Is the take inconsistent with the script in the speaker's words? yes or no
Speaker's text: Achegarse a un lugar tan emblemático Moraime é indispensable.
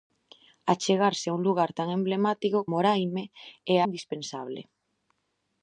no